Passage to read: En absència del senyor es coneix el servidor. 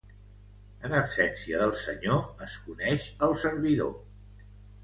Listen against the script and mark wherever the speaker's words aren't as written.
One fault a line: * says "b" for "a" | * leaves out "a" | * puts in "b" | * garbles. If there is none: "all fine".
all fine